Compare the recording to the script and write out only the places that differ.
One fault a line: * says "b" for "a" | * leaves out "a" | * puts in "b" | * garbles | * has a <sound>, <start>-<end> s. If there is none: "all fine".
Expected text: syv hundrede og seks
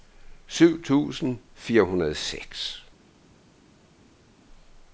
* puts in "tusind fire"